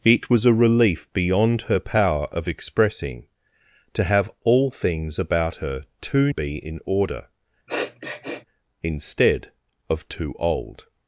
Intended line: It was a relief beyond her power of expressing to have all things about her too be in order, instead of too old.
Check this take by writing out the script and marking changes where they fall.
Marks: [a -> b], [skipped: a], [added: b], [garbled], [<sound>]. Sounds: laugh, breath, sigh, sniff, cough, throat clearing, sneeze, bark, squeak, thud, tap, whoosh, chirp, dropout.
It was a relief beyond her power of expressing to have all things about her too be in order, [sniff] instead of too old.